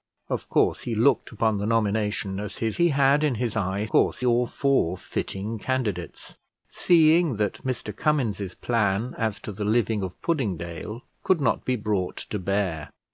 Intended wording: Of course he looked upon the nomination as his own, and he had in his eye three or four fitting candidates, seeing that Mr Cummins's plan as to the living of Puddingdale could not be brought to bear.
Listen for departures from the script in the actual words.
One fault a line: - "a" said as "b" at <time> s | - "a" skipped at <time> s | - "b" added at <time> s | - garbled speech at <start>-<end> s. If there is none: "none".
- "own and" skipped at 2.8 s
- "three" said as "course" at 3.9 s